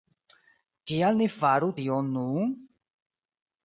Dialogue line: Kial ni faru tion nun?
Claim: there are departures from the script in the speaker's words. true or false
false